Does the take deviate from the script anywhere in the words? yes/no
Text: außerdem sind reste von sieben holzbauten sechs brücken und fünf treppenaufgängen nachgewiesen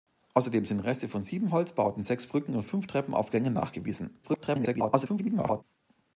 yes